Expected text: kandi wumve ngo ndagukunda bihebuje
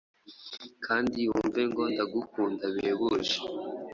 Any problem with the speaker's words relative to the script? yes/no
no